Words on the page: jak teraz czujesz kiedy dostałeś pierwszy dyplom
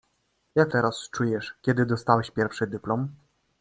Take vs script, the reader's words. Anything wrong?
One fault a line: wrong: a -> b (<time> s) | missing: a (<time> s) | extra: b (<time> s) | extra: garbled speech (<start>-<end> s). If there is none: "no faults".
no faults